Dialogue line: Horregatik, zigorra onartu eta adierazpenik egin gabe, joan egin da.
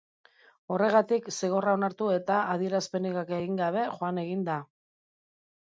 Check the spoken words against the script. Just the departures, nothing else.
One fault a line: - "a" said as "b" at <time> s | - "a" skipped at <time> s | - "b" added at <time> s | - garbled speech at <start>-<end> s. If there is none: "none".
none